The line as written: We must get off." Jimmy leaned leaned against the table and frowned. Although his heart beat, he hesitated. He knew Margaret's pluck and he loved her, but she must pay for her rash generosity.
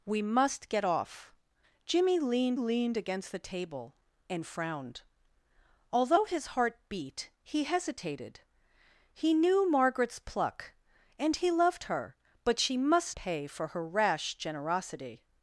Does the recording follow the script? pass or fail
pass